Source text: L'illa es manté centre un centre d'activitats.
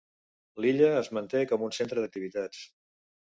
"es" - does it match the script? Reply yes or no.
yes